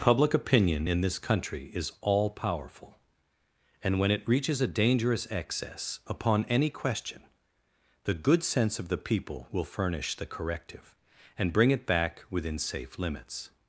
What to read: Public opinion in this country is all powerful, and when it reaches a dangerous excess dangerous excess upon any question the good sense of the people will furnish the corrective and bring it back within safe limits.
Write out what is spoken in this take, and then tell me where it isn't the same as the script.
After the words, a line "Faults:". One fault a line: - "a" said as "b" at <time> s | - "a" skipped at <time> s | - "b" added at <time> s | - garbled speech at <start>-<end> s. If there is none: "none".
Public opinion in this country is all powerful, and when it reaches a dangerous excess upon any question the good sense of the people will furnish the corrective and bring it back within safe limits.
Faults:
- "dangerous excess" skipped at 6.0 s